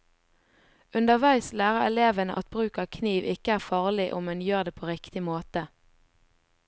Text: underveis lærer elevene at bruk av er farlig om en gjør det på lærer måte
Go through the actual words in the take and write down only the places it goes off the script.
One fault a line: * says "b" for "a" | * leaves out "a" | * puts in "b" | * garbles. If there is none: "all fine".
* puts in "kniv ikke"
* says "riktig" for "lærer"